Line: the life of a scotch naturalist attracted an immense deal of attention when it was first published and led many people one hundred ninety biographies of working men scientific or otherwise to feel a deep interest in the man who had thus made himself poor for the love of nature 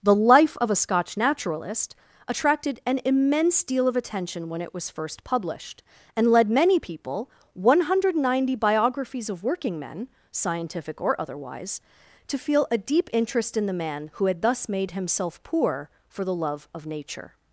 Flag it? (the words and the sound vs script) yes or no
no